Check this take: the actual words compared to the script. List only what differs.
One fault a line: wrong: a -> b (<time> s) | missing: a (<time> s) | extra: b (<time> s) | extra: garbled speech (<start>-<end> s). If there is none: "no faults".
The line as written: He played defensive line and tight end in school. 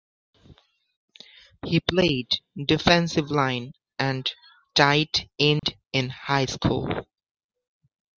extra: high (6.1 s)